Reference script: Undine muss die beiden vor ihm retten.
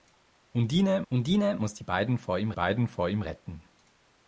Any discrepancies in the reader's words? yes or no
yes